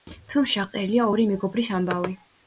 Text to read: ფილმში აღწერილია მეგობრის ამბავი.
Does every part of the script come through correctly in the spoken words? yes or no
no